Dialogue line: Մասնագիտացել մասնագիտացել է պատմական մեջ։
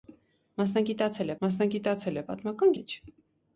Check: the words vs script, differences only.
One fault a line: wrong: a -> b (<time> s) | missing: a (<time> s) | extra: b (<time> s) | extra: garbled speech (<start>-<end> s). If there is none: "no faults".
no faults